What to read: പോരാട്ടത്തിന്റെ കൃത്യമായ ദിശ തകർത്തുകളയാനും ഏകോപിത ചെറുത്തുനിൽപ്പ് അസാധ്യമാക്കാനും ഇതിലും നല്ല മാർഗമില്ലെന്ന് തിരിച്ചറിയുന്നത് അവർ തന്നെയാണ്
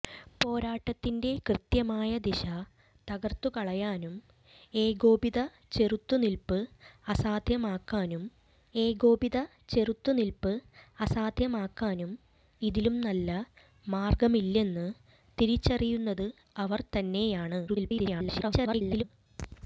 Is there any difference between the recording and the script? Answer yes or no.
yes